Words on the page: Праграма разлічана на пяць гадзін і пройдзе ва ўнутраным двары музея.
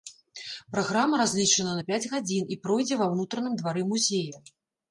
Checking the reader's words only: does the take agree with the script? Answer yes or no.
yes